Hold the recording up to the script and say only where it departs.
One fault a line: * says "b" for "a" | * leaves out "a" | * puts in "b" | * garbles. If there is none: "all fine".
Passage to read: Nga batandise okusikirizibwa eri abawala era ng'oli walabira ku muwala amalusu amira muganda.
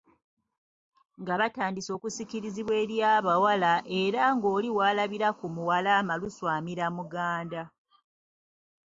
all fine